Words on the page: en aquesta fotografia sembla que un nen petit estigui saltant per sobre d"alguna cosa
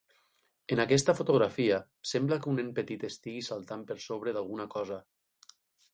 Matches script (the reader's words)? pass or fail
pass